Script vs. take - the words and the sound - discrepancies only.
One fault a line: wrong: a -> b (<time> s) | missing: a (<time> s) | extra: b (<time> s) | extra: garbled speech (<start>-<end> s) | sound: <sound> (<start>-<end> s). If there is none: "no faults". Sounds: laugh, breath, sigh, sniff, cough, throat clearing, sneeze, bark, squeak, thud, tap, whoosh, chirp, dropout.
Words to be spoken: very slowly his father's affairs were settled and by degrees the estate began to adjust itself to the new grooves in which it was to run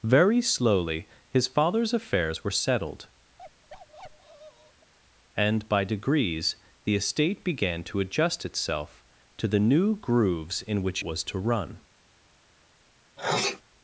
sound: bark (3.4-4.9 s)
missing: it (11.0 s)
sound: sneeze (13.2-13.6 s)